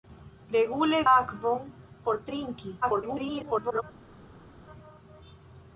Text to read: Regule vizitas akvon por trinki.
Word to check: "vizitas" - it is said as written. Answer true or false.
false